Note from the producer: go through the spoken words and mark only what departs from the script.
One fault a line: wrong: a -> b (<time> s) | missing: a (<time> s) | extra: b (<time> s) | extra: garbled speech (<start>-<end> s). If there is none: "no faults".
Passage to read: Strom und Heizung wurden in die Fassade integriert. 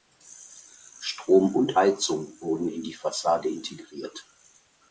no faults